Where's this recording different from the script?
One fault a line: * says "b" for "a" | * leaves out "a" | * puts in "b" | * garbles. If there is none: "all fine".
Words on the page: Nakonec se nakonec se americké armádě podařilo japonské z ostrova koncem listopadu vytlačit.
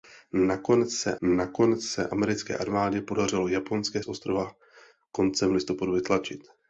all fine